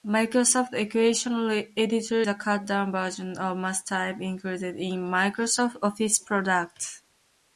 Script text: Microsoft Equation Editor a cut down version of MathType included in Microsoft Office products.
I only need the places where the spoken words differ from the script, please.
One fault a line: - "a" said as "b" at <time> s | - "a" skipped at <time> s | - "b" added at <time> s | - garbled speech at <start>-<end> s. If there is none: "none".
none